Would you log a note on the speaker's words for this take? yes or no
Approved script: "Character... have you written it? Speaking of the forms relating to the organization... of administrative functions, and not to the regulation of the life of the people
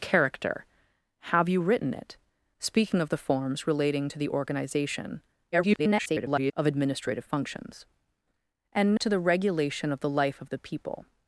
yes